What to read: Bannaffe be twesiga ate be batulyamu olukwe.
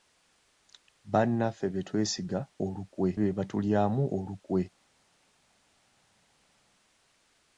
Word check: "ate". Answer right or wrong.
wrong